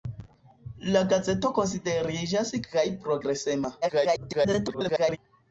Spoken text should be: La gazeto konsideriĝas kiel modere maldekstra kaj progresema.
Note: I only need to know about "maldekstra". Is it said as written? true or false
false